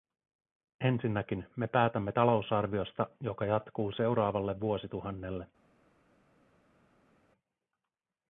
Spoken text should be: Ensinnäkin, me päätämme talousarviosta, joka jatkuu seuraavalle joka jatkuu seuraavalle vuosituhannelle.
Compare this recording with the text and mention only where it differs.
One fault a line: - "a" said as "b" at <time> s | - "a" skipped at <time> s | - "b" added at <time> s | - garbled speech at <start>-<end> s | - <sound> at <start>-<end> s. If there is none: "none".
- "joka jatkuu seuraavalle" skipped at 4.6 s